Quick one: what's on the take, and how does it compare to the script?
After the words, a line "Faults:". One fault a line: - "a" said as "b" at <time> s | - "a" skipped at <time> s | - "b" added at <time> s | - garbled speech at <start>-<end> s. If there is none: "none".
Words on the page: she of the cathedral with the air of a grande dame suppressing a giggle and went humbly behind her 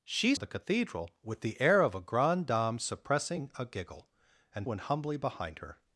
she of the cathedral with the air of a grande dame suppressing a giggle and went humbly behind her
Faults:
none